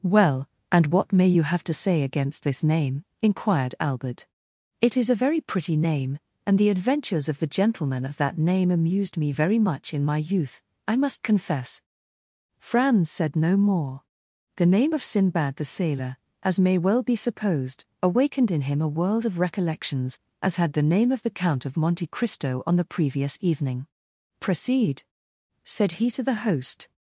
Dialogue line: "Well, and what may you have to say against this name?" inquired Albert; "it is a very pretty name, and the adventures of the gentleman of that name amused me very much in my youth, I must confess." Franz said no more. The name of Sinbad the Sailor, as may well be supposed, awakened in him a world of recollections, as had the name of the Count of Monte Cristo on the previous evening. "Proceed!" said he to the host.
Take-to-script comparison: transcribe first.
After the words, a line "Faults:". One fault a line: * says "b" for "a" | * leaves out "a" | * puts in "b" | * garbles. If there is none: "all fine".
"Well, and what may you have to say against this name?" inquired Albert; "it is a very pretty name, and the adventures of the gentleman of that name amused me very much in my youth, I must confess." Franz said no more. The name of Sinbad the Sailor, as may well be supposed, awakened in him a world of recollections, as had the name of the Count of Monte Cristo on the previous evening. "Proceed!" said he to the host.
Faults:
all fine